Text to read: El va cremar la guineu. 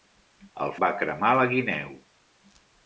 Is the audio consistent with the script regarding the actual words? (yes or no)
yes